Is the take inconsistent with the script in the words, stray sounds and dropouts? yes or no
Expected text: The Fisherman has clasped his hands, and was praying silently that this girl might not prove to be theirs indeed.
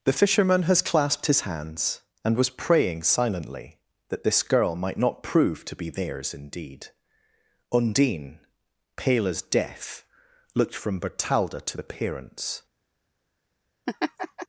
yes